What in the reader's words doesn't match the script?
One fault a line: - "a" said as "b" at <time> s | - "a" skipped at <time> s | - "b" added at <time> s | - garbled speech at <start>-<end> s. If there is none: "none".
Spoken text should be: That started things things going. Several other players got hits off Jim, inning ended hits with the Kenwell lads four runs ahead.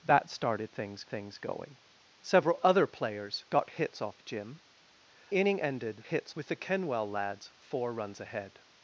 none